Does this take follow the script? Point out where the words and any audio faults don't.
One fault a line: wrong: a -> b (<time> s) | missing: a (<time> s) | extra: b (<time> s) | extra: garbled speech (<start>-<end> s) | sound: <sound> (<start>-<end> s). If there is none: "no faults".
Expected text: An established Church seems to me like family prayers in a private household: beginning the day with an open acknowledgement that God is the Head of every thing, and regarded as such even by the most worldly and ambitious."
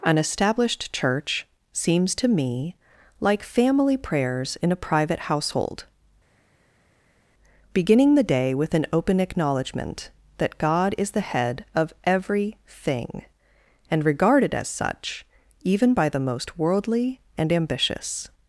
no faults